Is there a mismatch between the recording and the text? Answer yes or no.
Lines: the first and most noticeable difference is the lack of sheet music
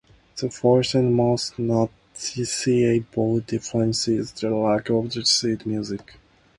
no